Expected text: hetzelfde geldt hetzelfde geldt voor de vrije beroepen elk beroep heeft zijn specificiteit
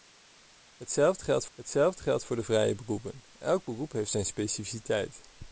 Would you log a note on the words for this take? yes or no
no